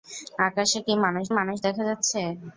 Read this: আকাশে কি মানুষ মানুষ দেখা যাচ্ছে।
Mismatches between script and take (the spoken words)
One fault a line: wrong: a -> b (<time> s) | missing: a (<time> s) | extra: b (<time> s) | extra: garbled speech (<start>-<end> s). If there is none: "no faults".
no faults